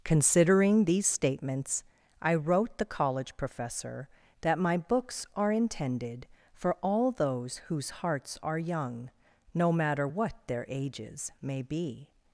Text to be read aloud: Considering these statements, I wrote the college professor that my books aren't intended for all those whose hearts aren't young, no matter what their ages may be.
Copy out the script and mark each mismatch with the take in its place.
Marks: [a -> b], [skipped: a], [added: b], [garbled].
Considering these statements, I wrote the college professor that my books [aren't -> are] intended for all those whose hearts [aren't -> are] young, no matter what their ages may be.